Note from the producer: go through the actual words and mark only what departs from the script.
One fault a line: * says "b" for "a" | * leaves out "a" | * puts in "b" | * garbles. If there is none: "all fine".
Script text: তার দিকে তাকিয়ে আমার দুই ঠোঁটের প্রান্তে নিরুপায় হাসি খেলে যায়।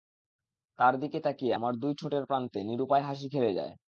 all fine